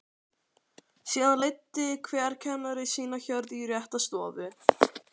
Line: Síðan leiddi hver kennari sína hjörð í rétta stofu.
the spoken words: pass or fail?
pass